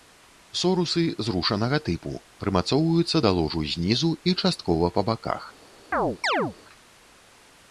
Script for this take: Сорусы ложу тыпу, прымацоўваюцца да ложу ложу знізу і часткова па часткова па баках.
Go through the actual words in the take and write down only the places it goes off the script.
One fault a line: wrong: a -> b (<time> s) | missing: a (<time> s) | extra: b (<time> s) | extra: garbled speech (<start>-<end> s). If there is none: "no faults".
wrong: ложу -> зрушанага (1.3 s)
missing: ложу (3.7 s)
missing: часткова па (5.1 s)